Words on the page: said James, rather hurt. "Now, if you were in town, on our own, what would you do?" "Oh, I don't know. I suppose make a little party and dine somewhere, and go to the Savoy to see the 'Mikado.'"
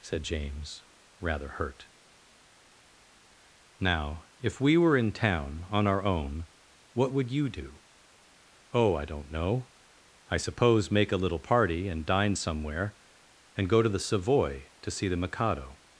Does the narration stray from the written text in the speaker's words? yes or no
yes